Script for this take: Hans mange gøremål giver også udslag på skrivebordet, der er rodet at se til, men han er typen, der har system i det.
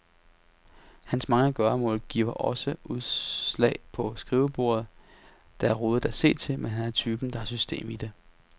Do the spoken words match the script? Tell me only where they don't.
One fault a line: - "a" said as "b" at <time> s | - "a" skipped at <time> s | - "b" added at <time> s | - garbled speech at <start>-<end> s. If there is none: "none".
none